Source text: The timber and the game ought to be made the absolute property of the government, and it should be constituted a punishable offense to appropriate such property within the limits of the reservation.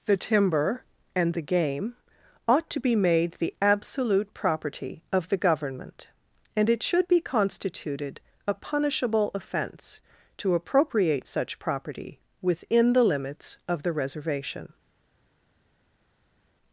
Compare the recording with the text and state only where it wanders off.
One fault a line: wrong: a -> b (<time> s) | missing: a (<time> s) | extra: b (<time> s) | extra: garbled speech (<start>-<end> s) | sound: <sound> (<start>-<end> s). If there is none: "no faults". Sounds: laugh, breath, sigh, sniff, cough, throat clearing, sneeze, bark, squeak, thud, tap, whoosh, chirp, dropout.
no faults